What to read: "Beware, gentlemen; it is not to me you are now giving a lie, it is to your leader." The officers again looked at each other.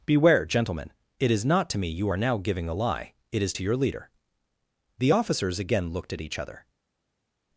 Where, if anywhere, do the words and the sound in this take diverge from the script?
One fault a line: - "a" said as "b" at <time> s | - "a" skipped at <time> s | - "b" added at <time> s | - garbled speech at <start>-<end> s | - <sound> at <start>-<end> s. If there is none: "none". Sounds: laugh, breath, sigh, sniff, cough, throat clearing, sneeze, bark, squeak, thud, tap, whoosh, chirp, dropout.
none